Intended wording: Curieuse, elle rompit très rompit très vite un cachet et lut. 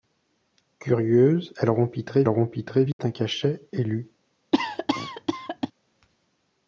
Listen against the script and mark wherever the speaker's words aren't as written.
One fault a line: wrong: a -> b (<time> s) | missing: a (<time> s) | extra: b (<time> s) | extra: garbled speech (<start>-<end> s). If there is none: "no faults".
no faults